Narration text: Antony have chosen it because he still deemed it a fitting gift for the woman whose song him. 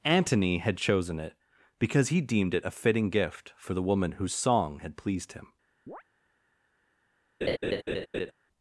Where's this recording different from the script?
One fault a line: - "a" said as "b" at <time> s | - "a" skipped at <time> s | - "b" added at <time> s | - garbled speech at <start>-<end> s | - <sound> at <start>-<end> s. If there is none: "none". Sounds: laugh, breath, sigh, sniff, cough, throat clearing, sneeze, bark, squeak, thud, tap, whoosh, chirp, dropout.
- "have" said as "had" at 0.6 s
- "still" skipped at 2.2 s
- "had pleased" added at 4.8 s
- chirp at 5.9-6.0 s
- laugh at 7.4-8.3 s